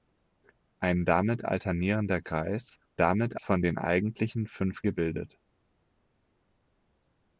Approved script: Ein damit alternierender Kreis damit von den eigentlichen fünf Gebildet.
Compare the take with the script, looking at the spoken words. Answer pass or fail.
pass